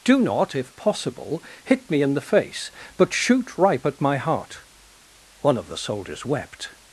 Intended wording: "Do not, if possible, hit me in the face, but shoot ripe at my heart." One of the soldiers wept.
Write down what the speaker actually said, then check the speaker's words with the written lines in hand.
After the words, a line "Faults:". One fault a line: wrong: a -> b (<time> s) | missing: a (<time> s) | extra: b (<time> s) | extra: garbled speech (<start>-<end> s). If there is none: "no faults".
"Do not, if possible, hit me in the face, but shoot ripe at my heart." One of the soldiers wept.
Faults:
no faults